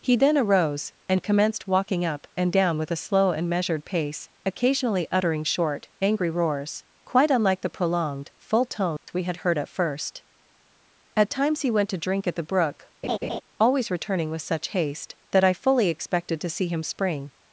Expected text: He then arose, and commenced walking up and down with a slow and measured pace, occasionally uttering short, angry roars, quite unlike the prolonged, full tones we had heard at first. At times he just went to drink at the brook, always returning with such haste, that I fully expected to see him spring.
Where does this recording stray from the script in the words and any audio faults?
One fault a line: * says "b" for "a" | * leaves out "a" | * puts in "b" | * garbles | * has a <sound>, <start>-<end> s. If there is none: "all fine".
* has a dropout, 9.0-9.1 s
* leaves out "just"
* has a laugh, 13.0-13.4 s